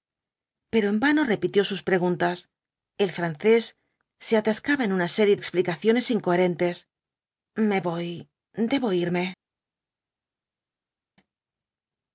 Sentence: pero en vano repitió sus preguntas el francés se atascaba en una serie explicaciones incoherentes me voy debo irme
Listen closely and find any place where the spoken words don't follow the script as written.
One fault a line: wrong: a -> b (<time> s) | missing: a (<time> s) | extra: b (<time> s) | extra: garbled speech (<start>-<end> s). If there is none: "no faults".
no faults